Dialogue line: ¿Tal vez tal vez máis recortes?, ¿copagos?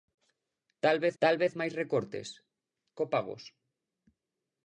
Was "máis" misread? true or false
false